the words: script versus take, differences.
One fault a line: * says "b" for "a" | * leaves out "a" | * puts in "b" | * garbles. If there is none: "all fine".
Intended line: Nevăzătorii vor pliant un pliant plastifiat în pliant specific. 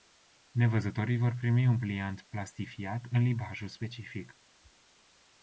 * says "primi" for "pliant"
* says "limbajul" for "pliant"